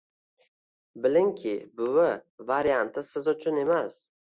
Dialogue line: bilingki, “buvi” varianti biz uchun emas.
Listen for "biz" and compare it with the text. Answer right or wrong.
wrong